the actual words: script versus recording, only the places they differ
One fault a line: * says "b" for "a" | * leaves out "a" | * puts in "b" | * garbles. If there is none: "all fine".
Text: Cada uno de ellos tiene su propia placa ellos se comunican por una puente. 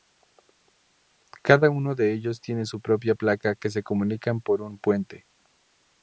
* says "que" for "ellos"
* says "un" for "una"